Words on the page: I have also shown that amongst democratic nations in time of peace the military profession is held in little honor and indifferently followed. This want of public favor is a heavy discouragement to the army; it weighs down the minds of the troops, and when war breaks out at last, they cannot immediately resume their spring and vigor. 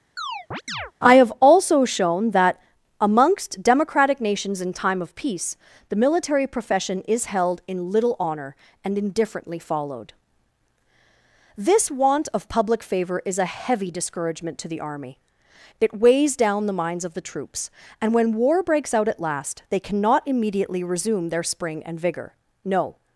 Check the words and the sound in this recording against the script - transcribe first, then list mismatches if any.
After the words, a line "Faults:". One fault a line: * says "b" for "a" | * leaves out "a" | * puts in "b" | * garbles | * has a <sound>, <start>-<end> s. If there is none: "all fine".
I have also shown that amongst democratic nations in time of peace the military profession is held in little honor and indifferently followed. This want of public favor is a heavy discouragement to the army; it weighs down the minds of the troops, and when war breaks out at last, they cannot immediately resume their spring and vigor. No
Faults:
* has a chirp, 0.2-0.9 s
* puts in "No"